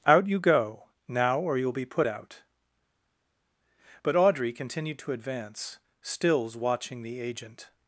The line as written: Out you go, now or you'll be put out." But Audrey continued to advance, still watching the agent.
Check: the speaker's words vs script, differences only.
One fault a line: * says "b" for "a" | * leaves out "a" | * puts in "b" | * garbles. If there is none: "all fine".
* says "stills" for "still"